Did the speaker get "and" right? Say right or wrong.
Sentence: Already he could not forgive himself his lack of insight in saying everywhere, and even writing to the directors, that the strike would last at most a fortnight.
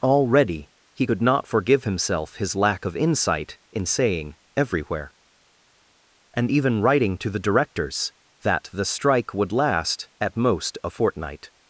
right